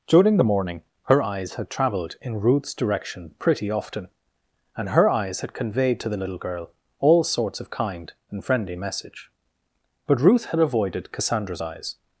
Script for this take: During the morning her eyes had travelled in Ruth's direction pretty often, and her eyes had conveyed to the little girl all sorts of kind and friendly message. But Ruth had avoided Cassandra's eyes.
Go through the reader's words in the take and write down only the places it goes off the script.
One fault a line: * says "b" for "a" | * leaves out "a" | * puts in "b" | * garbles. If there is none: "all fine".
all fine